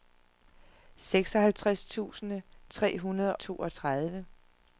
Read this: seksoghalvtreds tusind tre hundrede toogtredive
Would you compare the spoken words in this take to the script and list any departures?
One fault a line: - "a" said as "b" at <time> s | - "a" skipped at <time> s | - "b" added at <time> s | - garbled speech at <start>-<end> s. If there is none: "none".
none